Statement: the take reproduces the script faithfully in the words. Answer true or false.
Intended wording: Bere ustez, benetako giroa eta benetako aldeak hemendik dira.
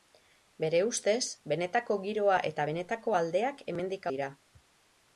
true